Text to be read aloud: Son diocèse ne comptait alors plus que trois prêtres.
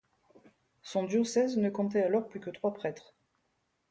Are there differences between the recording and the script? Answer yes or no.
no